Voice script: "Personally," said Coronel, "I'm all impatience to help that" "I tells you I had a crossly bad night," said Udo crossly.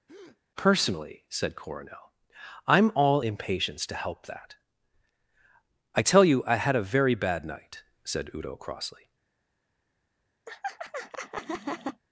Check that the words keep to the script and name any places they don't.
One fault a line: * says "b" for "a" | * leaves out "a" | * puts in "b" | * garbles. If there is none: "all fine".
* says "tell" for "tells"
* says "very" for "crossly"